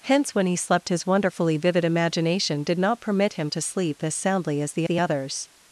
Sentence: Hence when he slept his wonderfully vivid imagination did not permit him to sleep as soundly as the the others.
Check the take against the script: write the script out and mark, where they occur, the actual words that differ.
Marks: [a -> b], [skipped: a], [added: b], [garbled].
Hence when he slept his wonderfully vivid imagination did not permit him to sleep as soundly as the the others.